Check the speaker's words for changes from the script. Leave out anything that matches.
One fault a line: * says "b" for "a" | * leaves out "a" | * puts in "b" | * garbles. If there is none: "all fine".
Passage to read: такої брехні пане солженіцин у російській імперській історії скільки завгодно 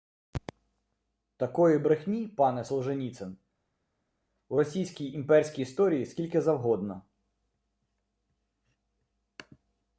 all fine